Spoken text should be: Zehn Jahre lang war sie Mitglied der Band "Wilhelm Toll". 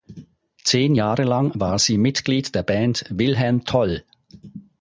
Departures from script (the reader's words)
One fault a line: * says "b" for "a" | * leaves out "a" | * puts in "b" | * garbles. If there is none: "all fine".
all fine